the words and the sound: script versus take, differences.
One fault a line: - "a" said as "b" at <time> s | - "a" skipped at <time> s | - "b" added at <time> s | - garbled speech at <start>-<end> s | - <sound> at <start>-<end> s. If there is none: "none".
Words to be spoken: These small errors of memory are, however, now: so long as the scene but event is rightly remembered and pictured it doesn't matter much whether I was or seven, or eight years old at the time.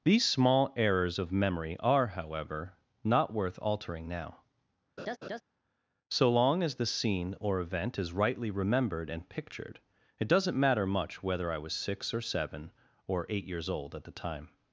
- "not worth altering" added at 3.0 s
- laugh at 5.0-5.4 s
- "but" said as "or" at 7.4 s
- "six" added at 11.7 s